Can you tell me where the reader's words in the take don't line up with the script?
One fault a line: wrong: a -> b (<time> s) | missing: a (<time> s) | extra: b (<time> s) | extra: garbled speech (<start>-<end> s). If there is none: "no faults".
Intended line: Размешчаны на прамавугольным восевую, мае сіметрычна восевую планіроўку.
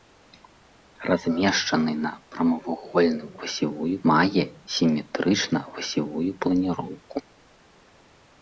no faults